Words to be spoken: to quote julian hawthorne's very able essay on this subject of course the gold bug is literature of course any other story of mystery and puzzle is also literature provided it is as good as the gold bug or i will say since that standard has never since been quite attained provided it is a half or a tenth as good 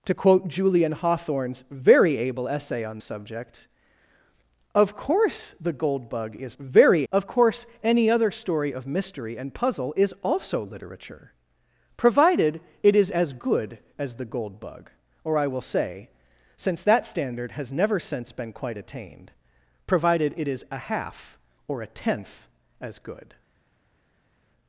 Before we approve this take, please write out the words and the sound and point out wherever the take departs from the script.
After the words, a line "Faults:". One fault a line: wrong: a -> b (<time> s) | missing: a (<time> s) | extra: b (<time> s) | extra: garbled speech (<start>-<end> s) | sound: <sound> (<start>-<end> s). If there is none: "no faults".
to quote julian hawthorne's very able essay on subject of course the gold bug is very of course any other story of mystery and puzzle is also literature provided it is as good as the gold bug or i will say since that standard has never since been quite attained provided it is a half or a tenth as good
Faults:
missing: this (3.0 s)
wrong: literature -> very (6.6 s)